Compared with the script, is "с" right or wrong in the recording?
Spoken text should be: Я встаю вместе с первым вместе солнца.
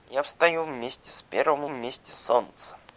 right